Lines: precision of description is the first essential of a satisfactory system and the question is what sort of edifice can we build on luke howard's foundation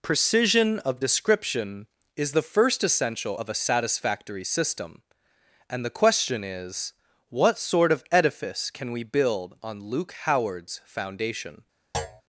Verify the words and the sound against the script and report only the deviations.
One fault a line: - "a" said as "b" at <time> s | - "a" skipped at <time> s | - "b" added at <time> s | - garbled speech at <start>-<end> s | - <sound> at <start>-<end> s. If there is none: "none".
- thud at 11.9-12.2 s